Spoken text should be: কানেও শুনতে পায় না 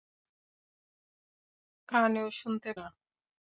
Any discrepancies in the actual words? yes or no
yes